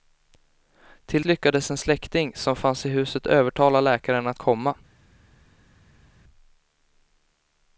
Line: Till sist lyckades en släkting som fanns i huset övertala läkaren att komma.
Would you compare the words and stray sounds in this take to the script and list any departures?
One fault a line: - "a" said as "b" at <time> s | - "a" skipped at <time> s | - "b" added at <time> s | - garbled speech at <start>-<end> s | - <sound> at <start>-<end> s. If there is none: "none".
- "sist" skipped at 1.2 s